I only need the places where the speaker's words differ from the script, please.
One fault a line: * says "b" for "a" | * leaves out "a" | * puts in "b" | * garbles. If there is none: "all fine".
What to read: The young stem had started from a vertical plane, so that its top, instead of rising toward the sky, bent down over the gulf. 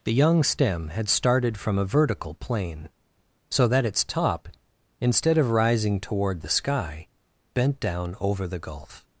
all fine